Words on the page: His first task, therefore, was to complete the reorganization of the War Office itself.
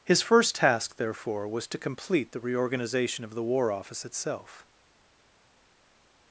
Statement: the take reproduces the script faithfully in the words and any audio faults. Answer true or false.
true